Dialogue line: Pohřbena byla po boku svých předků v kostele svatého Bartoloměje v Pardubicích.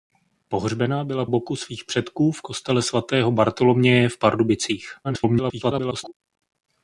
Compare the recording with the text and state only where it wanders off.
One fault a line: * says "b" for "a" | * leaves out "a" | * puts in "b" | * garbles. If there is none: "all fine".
* leaves out "po"
* garbles